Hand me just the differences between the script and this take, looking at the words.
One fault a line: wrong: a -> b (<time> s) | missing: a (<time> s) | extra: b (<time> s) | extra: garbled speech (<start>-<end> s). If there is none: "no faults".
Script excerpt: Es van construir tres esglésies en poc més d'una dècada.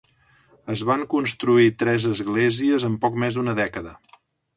no faults